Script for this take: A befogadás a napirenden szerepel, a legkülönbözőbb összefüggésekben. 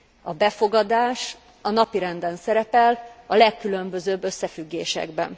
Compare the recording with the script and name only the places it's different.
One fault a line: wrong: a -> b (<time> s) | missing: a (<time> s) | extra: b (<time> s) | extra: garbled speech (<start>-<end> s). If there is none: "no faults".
no faults